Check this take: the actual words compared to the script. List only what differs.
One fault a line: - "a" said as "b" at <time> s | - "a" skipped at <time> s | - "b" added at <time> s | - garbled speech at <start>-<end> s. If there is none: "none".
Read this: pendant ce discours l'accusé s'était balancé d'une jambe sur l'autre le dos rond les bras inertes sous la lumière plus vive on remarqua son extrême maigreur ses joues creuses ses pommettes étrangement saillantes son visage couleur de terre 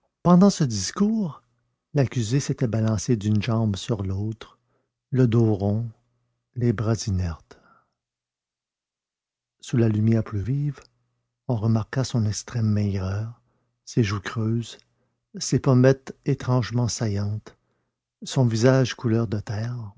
none